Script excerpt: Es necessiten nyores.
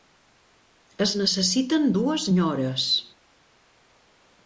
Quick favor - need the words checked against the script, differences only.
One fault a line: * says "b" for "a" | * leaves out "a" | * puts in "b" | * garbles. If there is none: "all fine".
* puts in "dues"